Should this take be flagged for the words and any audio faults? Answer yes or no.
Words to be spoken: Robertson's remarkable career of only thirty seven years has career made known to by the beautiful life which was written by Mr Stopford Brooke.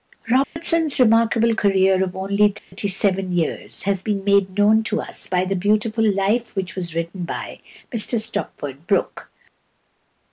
yes